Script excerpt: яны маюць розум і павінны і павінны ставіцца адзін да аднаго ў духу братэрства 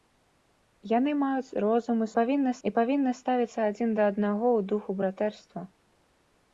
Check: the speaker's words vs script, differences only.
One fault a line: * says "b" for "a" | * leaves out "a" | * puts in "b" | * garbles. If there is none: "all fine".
all fine